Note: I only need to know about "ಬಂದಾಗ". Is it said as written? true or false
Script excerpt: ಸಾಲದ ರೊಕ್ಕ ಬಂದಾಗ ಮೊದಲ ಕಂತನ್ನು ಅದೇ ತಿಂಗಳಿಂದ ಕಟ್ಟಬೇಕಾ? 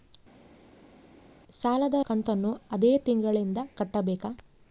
false